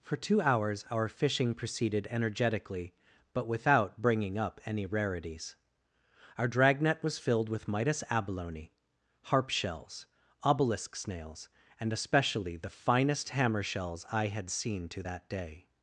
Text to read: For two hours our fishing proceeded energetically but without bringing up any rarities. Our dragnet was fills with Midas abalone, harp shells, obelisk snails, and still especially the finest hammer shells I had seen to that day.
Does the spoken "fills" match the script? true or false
false